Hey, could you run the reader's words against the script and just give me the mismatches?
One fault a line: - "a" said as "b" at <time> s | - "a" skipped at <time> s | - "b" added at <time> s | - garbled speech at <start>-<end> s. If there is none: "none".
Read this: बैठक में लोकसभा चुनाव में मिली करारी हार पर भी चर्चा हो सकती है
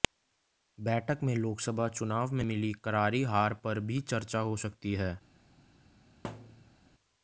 none